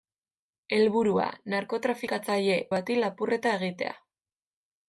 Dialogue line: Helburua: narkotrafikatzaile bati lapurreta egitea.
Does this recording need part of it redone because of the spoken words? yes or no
no